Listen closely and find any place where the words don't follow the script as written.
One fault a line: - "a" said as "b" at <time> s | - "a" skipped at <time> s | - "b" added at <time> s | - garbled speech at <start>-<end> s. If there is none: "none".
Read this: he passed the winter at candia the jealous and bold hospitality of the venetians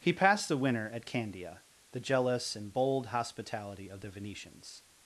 none